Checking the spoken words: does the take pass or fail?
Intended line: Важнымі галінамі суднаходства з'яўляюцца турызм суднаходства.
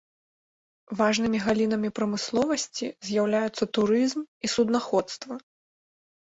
fail